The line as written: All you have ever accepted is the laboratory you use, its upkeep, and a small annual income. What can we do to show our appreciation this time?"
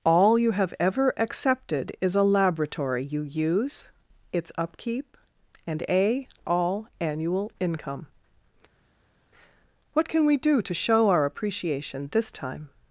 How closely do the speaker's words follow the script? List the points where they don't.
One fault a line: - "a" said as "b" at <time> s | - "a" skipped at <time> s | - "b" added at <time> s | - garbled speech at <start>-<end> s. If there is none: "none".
- "the" said as "a" at 2.1 s
- "small" said as "all" at 6.5 s